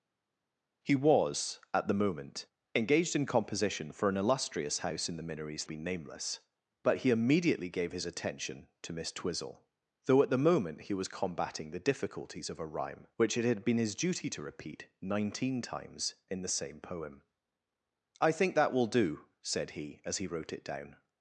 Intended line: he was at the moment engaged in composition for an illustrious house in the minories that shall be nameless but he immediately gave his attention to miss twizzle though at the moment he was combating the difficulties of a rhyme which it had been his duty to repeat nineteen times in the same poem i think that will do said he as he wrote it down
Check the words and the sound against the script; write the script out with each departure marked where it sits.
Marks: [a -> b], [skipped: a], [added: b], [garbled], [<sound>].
he was at the moment engaged in composition for an illustrious house in the minories [skipped: that shall] be nameless but he immediately gave his attention to miss twizzle though at the moment he was combating the difficulties of a rhyme which it had been his duty to repeat nineteen times in the same poem i think that will do said he as he wrote it down